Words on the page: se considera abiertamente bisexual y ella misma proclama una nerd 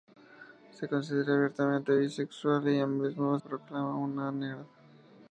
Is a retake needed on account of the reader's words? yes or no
no